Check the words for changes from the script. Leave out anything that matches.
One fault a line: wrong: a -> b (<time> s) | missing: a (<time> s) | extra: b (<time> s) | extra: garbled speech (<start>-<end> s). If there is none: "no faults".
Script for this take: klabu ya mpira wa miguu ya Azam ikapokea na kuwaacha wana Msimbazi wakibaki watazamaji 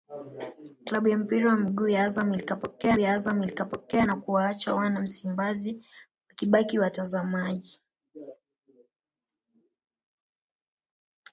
extra: ya Azam ikapokea (3.0 s)